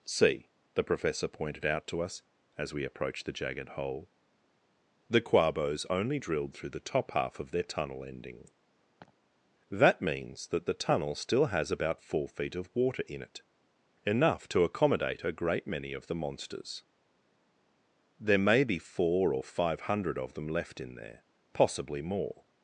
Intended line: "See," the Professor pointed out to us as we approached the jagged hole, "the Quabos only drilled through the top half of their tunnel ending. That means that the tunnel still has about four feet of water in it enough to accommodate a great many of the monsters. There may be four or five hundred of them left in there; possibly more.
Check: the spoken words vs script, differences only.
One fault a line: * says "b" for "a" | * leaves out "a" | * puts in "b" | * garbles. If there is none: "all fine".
all fine